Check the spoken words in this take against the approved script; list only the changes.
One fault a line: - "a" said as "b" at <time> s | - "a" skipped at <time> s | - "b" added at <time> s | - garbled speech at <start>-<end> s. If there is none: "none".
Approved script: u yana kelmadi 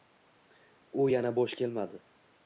- "bo'sh" added at 1.4 s